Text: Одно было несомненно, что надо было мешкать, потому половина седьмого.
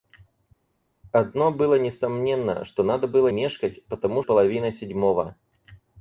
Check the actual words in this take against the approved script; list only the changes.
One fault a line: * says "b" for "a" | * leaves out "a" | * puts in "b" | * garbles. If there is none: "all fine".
all fine